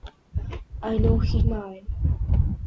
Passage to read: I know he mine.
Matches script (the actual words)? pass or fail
pass